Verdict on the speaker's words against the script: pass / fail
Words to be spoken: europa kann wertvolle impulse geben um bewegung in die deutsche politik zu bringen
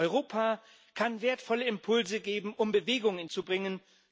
fail